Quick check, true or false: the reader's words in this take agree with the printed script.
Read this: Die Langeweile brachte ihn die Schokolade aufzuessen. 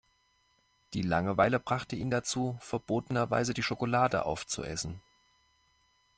false